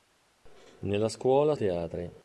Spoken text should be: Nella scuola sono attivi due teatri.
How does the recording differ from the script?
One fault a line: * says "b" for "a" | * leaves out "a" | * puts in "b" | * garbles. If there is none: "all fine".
* leaves out "sono attivi due"